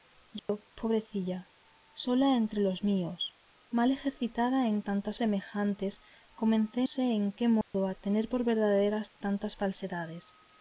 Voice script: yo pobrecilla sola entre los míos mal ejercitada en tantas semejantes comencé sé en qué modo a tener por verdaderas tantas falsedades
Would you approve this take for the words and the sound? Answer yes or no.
no